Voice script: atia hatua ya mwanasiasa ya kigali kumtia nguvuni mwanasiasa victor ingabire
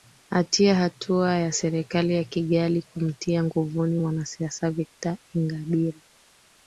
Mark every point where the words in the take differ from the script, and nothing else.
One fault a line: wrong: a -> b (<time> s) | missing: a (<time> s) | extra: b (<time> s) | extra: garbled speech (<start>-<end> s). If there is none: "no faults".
wrong: mwanasiasa -> serikali (1.5 s)